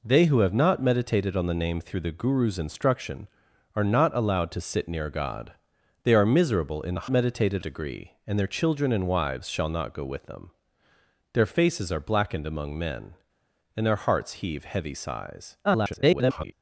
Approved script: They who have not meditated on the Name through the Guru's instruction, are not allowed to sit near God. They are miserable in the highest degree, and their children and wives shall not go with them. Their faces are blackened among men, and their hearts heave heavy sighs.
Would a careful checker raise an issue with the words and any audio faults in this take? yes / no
yes